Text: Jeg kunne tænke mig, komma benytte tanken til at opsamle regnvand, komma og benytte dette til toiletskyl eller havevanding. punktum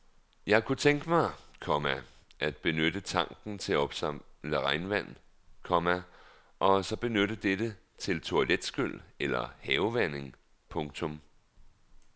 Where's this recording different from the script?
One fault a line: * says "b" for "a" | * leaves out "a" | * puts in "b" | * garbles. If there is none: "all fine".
* puts in "at"
* puts in "så"